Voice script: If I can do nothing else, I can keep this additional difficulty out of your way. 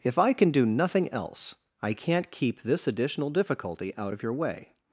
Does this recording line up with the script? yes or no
no